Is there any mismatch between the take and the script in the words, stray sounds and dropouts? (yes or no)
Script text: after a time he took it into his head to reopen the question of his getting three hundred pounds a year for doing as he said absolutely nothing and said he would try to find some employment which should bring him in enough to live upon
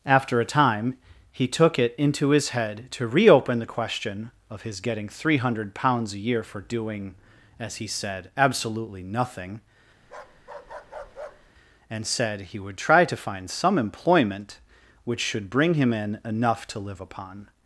yes